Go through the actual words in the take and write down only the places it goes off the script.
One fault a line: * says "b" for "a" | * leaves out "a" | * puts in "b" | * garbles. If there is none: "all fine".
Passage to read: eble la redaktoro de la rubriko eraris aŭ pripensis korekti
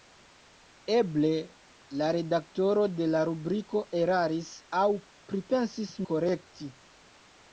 all fine